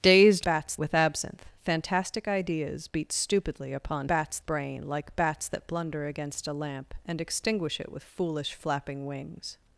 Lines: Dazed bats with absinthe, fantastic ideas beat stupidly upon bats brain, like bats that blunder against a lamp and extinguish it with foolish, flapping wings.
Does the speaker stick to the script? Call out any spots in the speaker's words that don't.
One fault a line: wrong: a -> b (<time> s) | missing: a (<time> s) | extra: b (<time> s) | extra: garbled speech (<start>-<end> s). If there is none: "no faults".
no faults